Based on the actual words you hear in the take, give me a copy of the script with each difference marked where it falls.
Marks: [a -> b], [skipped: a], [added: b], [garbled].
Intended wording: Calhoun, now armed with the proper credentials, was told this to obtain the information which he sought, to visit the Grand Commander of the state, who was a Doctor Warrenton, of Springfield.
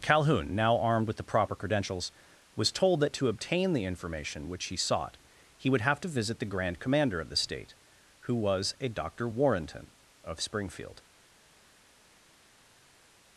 Calhoun, now armed with the proper credentials, was told [this -> that] to obtain the information which he sought, [added: he would have] to visit the Grand Commander of the state, who was a Doctor Warrenton, of Springfield.